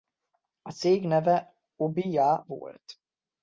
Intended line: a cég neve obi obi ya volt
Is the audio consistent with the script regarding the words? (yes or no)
no